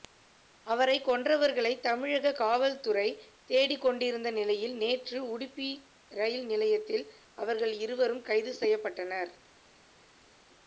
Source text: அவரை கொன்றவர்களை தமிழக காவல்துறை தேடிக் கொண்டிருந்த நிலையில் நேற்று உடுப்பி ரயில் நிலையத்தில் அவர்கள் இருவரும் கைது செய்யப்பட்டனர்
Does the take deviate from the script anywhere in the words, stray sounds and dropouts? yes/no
no